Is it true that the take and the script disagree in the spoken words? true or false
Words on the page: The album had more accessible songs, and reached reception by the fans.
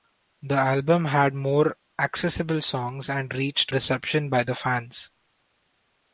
false